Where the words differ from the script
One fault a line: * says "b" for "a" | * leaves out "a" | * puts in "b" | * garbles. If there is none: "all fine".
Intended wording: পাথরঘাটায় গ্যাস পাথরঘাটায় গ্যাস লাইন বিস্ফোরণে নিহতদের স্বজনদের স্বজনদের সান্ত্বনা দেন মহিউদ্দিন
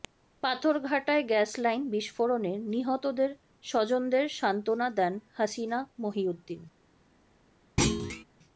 * leaves out "পাথরঘাটায় গ্যাস"
* leaves out "স্বজনদের"
* puts in "হাসিনা"